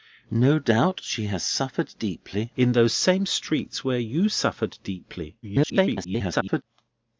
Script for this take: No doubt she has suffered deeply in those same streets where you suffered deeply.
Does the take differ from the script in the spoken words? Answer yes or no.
yes